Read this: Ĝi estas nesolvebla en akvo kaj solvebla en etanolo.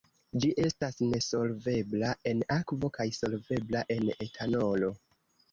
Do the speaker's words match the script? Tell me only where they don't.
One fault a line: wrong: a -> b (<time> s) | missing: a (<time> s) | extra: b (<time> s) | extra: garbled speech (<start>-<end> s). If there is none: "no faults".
no faults